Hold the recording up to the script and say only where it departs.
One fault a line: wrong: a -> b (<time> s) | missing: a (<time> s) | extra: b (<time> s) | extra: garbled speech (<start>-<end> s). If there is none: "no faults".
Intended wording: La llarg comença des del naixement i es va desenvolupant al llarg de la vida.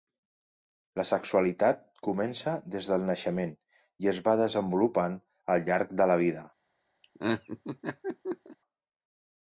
wrong: llarg -> sexualitat (1.1 s)